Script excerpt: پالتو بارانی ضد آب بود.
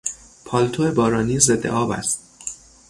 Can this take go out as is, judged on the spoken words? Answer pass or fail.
fail